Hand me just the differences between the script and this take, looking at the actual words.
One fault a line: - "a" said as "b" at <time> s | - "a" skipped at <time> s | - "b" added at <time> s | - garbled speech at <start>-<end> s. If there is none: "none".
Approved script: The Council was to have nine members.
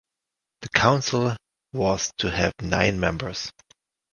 none